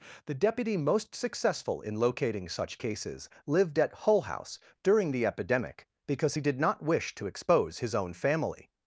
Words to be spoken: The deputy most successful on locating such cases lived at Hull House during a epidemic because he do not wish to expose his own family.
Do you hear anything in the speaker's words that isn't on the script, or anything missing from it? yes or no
yes